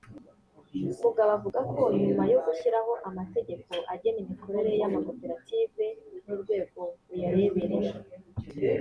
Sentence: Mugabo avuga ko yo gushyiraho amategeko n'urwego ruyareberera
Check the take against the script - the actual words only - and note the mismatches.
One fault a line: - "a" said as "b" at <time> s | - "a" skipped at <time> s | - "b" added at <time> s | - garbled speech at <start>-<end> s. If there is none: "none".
- "nyuma" added at 2.0 s
- "agena imikorere y'amakoperative" added at 3.9 s